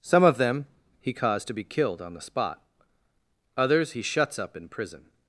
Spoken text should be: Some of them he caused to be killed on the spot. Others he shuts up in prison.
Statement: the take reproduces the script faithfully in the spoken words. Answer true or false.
true